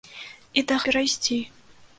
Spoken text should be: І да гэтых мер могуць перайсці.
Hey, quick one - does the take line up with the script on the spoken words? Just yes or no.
no